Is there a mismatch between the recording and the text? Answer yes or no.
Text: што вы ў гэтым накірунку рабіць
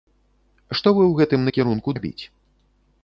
no